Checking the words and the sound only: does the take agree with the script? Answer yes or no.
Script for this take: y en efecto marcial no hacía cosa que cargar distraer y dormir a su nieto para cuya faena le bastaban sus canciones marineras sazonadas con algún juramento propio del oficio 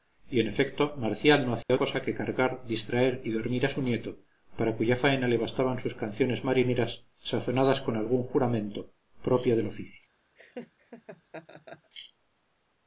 no